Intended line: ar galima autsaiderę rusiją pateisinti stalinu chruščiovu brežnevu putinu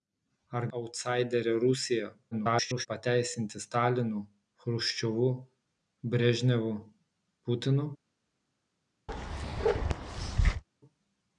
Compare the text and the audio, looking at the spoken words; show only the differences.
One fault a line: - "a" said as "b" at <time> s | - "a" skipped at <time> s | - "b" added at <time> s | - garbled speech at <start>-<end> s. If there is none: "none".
- "galima" skipped at 0.7 s
- garbled speech at 2.3-2.9 s